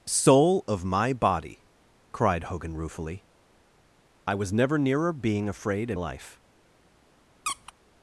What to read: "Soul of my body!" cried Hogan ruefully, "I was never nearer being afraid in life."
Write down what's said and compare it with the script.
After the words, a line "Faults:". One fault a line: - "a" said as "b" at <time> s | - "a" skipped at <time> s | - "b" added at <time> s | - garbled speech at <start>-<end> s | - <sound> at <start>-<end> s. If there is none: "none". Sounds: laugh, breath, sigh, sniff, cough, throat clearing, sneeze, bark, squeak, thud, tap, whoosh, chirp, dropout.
"Soul of my body!" cried Hogan ruefully, "I was never nearer being afraid in life."
Faults:
- squeak at 7.4-7.7 s